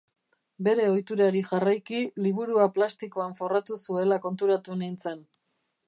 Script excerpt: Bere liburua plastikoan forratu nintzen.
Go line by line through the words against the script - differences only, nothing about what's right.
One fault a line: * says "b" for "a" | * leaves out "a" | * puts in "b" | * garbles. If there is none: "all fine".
* puts in "ohiturari jarraiki"
* puts in "zuela konturatu"